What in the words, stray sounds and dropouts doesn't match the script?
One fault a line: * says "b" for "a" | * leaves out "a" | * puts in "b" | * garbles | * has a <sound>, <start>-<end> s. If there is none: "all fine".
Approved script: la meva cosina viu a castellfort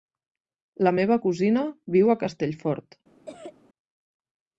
* has a cough, 3.3-3.5 s